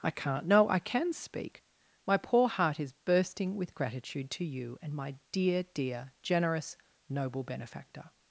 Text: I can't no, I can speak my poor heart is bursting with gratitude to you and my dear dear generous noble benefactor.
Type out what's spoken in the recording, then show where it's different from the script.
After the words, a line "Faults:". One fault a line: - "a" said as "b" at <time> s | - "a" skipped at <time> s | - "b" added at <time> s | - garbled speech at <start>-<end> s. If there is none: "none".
I can't no, I can speak my poor heart is bursting with gratitude to you and my dear dear generous noble benefactor.
Faults:
none